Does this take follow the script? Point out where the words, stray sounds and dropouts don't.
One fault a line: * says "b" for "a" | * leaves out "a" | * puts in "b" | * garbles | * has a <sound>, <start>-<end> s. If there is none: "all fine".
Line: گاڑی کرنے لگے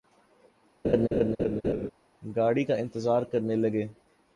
* has a laugh, 0.8-1.9 s
* puts in "کا انتظار"